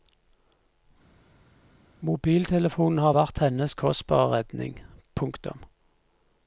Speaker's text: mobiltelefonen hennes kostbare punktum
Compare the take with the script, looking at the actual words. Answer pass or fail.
fail